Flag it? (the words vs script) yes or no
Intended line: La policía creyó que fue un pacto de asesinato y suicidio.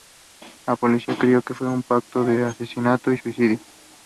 no